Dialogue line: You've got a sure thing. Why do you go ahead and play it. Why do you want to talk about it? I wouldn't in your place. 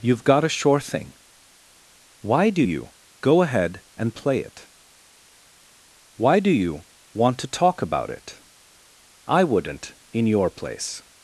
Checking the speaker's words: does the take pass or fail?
pass